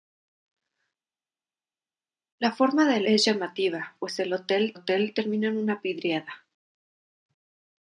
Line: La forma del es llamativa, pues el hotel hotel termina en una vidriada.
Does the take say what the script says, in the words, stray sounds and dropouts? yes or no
yes